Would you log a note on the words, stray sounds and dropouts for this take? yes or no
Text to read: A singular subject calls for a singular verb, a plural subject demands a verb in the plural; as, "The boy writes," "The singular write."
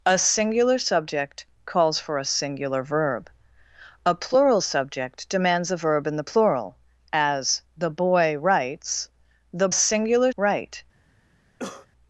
yes